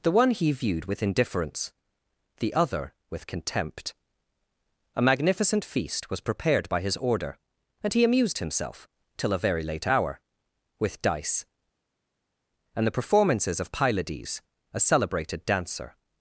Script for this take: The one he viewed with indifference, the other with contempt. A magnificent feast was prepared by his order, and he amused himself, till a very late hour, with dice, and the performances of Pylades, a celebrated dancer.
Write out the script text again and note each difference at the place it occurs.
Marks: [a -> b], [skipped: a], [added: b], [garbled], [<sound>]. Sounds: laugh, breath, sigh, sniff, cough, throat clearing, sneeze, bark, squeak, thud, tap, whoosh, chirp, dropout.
The one he viewed with indifference, the other with contempt. A magnificent feast was prepared by his order, and he amused himself, till a very late hour, with dice, and the performances of Pylades, a celebrated dancer.